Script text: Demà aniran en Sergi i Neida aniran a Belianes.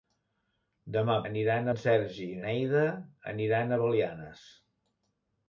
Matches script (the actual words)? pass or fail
pass